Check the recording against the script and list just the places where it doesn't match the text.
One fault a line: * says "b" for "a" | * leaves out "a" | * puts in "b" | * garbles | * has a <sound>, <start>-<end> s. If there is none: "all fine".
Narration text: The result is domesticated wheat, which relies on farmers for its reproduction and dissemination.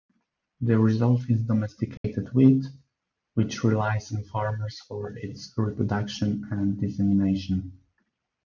* has a dropout, 2.0-2.0 s